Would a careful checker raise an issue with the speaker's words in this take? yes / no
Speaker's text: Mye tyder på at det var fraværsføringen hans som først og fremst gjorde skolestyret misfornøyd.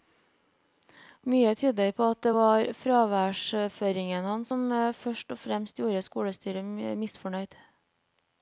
no